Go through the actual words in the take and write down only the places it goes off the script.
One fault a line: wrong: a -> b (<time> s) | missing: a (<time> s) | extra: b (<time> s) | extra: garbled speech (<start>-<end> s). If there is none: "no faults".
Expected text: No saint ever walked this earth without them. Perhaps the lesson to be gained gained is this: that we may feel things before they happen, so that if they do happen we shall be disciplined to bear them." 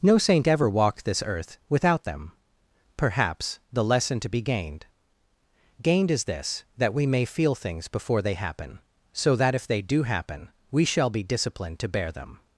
no faults